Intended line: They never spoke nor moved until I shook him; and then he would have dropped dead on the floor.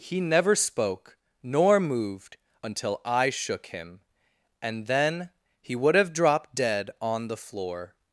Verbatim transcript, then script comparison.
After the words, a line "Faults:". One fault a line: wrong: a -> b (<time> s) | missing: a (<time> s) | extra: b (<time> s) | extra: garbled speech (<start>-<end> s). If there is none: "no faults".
He never spoke nor moved until I shook him; and then he would have dropped dead on the floor.
Faults:
wrong: They -> He (0.0 s)